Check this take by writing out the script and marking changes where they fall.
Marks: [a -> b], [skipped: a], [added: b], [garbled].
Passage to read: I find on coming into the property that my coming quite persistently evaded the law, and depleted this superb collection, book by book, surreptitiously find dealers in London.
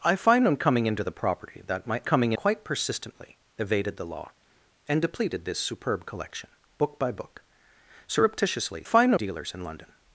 I find on coming into the property that my coming quite persistently evaded the law, and depleted this superb collection, book by book, surreptitiously find dealers in London.